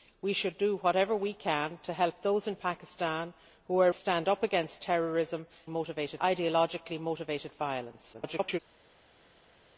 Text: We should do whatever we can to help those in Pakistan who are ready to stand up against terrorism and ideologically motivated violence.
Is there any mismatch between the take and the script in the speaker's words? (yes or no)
yes